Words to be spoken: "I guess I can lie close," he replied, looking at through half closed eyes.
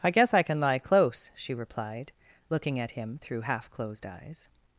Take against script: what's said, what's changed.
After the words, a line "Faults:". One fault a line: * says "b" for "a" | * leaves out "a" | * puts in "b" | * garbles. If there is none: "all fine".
"I guess I can lie close," she replied, looking at him through half closed eyes.
Faults:
* says "she" for "he"
* puts in "him"